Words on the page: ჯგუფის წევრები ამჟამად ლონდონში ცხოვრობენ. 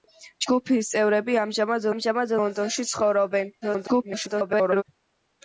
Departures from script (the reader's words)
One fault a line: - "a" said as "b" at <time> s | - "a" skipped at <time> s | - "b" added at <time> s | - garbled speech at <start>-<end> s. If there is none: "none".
- "ამჟამად" added at 1.9 s
- garbled speech at 3.6-4.8 s